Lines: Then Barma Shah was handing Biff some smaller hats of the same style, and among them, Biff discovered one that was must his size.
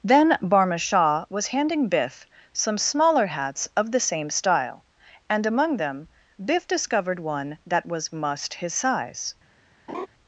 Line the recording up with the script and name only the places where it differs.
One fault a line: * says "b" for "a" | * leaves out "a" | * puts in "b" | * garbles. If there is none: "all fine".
all fine